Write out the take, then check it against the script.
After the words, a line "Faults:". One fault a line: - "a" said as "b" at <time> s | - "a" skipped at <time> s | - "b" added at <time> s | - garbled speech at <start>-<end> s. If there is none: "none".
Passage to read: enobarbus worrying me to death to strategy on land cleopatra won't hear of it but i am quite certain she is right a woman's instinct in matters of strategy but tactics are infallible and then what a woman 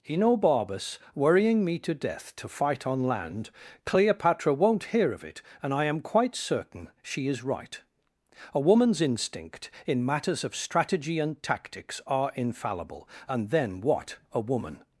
enobarbus worrying me to death to fight on land cleopatra won't hear of it and i am quite certain she is right a woman's instinct in matters of strategy and tactics are infallible and then what a woman
Faults:
- "strategy" said as "fight" at 2.5 s
- "but" said as "and" at 5.6 s
- "but" said as "and" at 11.2 s